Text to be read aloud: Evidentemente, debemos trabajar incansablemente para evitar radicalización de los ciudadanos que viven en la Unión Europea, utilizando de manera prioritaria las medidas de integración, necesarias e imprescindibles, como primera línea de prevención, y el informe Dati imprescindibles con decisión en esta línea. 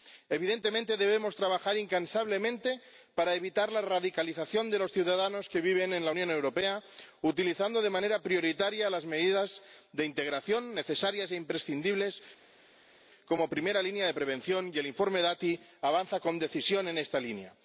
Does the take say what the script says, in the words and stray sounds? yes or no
no